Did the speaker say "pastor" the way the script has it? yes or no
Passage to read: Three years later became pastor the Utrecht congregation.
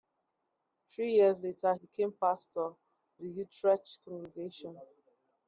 yes